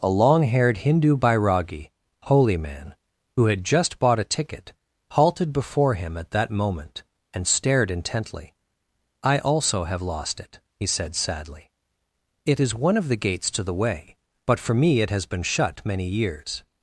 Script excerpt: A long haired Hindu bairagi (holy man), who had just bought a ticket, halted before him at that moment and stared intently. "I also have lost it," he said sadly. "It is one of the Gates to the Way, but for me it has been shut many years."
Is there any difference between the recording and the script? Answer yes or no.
no